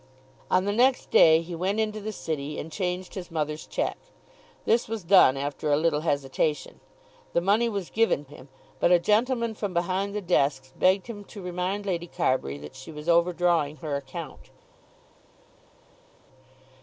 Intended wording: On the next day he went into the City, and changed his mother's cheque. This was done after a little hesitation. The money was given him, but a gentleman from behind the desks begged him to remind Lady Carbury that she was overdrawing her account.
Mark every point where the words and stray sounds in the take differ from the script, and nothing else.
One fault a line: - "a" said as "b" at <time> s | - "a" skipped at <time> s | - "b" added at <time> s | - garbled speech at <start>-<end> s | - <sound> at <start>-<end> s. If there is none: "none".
none